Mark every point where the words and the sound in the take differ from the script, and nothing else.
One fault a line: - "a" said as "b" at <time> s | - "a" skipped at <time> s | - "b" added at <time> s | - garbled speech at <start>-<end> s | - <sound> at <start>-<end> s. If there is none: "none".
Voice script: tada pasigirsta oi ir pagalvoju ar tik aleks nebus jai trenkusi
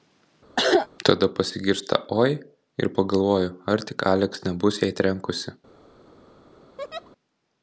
- cough at 0.6-0.9 s
- laugh at 6.8-7.1 s